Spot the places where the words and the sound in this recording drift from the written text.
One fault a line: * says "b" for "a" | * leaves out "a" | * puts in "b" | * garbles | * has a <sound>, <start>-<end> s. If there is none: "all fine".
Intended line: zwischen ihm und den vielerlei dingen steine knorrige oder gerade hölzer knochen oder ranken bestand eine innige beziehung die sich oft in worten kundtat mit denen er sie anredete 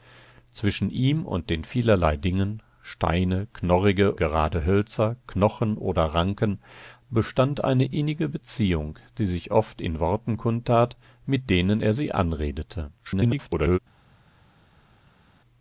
* leaves out "oder"
* garbles